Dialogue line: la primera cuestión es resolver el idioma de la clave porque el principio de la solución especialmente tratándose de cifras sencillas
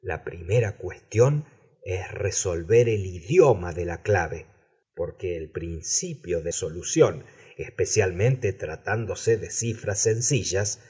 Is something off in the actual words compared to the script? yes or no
yes